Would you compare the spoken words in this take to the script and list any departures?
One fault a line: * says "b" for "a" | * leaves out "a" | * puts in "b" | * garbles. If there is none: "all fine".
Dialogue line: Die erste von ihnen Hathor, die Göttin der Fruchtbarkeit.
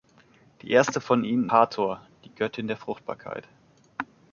all fine